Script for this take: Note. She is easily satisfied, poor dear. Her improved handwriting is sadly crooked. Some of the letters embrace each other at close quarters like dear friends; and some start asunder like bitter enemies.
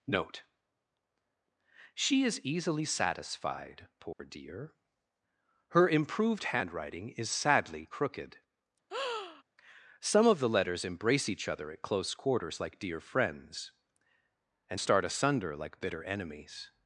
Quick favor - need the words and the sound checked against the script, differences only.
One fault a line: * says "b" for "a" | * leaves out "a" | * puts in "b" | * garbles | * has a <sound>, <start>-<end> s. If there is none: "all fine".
* has a dropout, 4.1-4.2 s
* has a breath, 8.9-9.4 s
* leaves out "some"